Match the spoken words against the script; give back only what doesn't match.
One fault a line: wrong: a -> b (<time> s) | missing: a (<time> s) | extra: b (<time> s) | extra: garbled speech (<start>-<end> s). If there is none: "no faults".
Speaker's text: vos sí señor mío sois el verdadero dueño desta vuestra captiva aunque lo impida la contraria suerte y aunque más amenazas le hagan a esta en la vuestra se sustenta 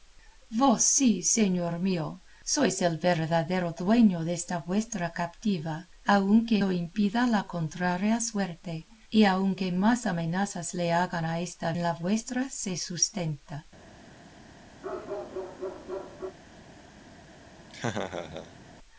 no faults